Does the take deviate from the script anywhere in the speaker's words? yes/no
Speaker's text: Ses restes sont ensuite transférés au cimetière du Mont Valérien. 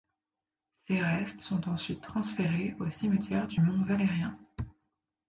no